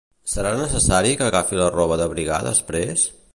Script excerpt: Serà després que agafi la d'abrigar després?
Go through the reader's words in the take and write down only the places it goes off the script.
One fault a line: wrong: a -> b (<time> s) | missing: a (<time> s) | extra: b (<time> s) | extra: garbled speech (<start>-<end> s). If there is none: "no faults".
wrong: després -> necessari (0.6 s)
extra: roba (1.8 s)